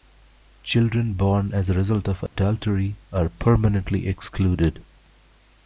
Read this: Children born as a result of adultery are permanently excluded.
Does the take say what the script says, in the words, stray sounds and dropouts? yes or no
no